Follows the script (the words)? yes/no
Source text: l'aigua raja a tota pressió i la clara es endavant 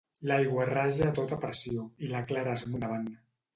yes